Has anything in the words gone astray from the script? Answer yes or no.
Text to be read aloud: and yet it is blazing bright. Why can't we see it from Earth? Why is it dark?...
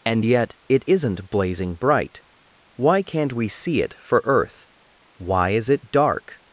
yes